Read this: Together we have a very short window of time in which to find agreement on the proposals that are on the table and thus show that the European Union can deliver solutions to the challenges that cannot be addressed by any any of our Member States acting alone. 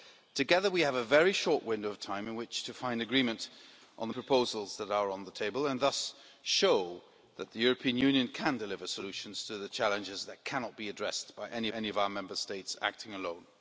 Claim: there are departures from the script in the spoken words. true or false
false